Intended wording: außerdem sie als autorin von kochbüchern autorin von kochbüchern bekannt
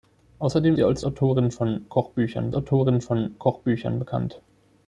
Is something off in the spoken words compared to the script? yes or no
no